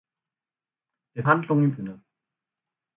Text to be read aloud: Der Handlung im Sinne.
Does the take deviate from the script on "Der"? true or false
false